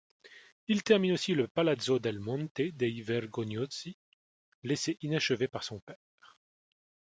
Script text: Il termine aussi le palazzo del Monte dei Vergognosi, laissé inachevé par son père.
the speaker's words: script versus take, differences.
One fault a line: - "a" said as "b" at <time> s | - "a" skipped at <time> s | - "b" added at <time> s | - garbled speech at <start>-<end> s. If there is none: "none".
none